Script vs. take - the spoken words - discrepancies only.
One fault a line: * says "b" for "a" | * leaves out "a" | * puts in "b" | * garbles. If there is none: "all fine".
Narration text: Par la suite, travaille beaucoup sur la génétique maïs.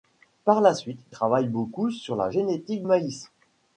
all fine